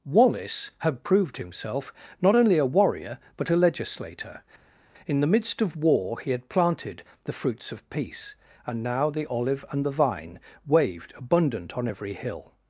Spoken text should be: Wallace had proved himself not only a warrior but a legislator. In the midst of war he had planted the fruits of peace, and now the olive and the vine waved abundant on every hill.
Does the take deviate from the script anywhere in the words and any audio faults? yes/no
no